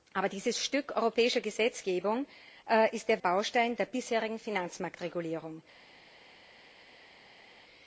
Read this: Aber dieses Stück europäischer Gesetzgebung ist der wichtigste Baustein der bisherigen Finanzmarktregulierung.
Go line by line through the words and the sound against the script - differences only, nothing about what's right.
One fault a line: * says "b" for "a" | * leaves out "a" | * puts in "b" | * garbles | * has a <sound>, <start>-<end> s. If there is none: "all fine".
* leaves out "wichtigste"